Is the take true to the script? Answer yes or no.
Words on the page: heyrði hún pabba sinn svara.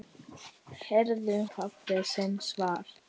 no